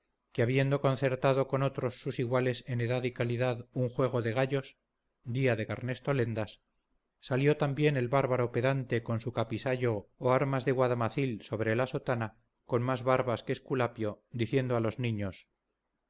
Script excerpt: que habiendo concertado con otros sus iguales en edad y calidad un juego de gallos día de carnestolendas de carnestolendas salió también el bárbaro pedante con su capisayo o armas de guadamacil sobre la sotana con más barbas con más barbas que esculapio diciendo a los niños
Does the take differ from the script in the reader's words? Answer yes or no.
yes